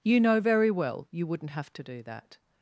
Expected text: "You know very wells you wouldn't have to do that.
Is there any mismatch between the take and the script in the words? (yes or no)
yes